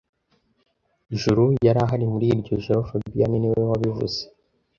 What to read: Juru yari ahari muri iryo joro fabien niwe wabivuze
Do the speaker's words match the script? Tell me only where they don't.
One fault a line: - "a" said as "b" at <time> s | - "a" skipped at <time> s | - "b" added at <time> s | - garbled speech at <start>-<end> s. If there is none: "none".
none